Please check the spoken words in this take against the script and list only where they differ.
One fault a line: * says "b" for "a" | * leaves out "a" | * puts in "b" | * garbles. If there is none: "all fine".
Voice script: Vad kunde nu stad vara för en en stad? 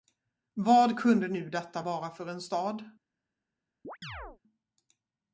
* says "detta" for "stad"
* leaves out "en"